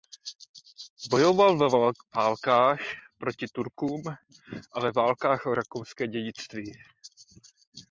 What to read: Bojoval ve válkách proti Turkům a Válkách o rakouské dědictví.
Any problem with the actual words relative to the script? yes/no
yes